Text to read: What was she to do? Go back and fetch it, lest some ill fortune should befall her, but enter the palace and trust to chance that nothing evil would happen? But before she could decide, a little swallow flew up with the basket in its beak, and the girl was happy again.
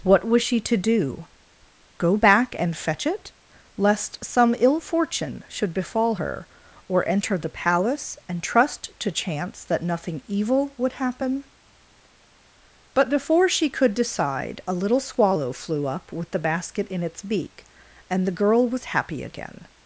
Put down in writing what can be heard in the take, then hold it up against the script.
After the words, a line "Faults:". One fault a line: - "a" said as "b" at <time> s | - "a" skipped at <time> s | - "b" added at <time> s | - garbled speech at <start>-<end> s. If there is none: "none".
What was she to do? Go back and fetch it, lest some ill fortune should befall her, or enter the palace and trust to chance that nothing evil would happen? But before she could decide, a little swallow flew up with the basket in its beak, and the girl was happy again.
Faults:
- "but" said as "or" at 6.9 s